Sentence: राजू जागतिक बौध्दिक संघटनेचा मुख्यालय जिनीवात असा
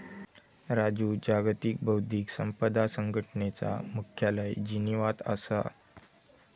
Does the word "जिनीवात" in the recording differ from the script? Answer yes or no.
no